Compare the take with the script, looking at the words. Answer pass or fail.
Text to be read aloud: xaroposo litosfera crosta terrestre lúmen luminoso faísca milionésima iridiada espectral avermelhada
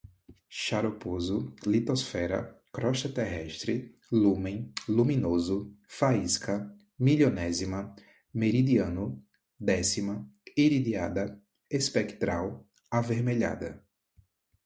fail